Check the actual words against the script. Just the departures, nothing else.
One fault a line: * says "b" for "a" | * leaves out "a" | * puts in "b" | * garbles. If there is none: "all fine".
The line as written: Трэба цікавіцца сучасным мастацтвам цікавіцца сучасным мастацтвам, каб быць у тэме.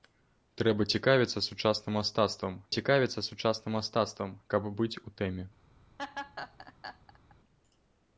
all fine